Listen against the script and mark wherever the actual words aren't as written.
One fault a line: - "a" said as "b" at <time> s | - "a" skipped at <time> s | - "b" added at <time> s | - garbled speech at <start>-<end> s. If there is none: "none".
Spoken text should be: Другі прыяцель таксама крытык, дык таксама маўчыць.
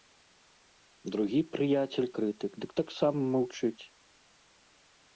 - "таксама" skipped at 2.1 s